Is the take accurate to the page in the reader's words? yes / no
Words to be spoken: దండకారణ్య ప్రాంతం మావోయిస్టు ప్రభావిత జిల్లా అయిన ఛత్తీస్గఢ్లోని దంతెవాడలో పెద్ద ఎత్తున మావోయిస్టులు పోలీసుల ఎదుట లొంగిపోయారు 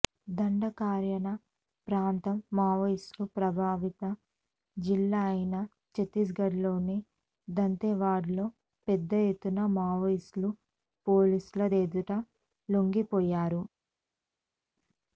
yes